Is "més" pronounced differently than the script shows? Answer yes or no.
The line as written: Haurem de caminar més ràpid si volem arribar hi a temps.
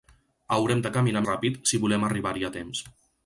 yes